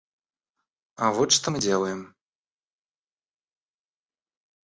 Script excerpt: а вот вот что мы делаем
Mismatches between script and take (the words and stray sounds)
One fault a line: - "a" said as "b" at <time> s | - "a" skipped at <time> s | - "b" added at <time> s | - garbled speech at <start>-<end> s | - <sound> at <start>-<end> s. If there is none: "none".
- "вот" skipped at 1.3 s